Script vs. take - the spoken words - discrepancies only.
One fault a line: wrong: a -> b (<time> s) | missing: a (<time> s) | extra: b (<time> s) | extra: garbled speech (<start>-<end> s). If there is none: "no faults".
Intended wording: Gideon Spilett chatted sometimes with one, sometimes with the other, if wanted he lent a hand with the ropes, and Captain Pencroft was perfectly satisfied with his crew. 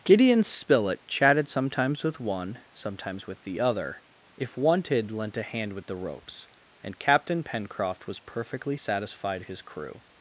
missing: he (5.1 s)
missing: with (9.4 s)